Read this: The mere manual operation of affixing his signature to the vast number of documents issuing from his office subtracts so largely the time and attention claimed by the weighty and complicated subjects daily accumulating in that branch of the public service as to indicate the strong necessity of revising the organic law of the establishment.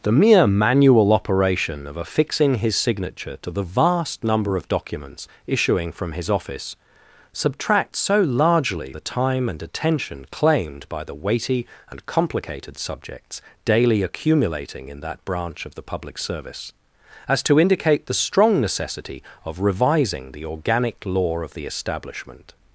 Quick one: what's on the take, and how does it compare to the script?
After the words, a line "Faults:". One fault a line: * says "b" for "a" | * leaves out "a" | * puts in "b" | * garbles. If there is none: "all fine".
The mere manual operation of affixing his signature to the vast number of documents issuing from his office subtracts so largely the time and attention claimed by the weighty and complicated subjects daily accumulating in that branch of the public service as to indicate the strong necessity of revising the organic law of the establishment.
Faults:
all fine